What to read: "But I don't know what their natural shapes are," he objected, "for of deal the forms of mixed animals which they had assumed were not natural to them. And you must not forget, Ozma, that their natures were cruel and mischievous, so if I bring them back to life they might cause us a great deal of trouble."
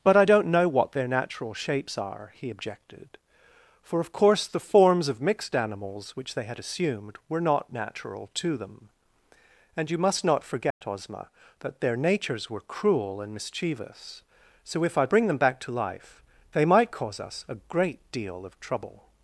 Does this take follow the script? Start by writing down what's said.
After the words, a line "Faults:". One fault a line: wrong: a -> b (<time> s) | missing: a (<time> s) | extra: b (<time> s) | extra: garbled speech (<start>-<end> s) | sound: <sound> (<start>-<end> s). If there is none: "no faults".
"But I don't know what their natural shapes are," he objected, "for of course the forms of mixed animals which they had assumed were not natural to them. And you must not forget, Ozma, that their natures were cruel and mischievous, so if I bring them back to life they might cause us a great deal of trouble."
Faults:
wrong: deal -> course (4.1 s)
sound: dropout (10.7-10.8 s)